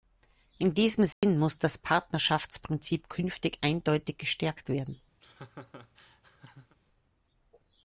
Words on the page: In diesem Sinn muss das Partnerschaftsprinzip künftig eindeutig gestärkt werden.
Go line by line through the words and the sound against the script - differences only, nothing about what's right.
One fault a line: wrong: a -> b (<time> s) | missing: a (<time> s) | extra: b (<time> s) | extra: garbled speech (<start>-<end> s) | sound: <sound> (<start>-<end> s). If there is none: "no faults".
sound: dropout (1.1-1.2 s)
sound: laugh (5.2-6.8 s)